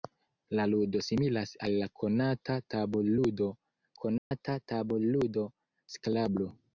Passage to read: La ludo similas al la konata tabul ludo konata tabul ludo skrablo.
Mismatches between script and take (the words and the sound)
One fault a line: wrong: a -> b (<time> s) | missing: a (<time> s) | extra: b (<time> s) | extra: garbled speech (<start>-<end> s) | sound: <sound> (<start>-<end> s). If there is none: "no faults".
sound: dropout (4.2-4.3 s)